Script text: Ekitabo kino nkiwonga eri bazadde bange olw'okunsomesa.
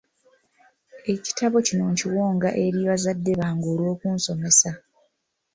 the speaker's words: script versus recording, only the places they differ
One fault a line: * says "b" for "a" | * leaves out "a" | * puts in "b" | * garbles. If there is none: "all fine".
all fine